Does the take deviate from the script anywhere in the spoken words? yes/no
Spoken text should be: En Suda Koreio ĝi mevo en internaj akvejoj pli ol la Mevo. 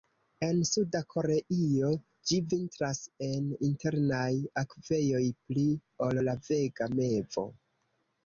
yes